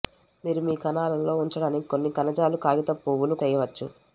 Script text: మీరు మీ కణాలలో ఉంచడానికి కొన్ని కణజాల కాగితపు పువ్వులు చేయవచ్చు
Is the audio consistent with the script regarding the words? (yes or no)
yes